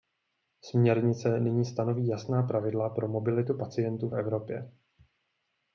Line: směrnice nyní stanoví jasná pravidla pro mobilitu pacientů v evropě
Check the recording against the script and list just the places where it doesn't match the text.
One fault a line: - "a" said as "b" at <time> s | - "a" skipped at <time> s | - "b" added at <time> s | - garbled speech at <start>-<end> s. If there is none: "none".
none